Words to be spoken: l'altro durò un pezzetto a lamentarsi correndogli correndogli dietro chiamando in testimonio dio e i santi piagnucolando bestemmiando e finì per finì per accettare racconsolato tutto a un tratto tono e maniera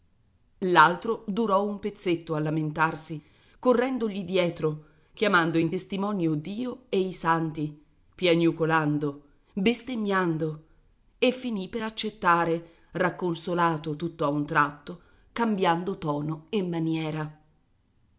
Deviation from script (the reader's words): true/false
true